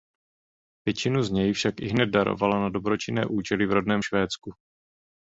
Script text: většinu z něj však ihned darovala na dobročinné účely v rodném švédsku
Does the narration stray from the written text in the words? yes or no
no